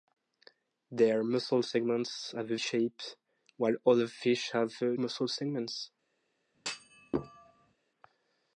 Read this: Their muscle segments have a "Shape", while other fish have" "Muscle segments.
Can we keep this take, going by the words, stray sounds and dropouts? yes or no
no